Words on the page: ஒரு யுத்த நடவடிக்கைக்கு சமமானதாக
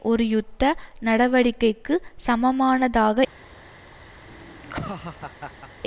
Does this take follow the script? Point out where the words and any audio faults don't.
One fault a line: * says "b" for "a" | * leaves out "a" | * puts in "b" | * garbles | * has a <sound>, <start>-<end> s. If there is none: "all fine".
* has a laugh, 4.2-5.7 s